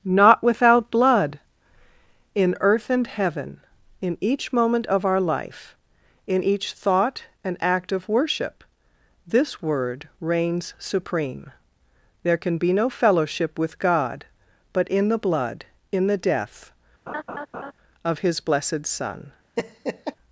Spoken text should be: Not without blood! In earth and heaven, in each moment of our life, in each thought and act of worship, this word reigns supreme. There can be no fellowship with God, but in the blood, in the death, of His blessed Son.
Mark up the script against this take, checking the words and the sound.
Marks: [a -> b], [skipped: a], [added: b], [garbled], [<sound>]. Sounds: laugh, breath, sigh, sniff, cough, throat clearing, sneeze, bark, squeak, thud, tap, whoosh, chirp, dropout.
Not without blood! In earth and heaven, in each moment of our life, in each thought and act of worship, this word reigns supreme. There can be no fellowship with God, but in the blood, in the death, [laugh] of His blessed Son. [laugh]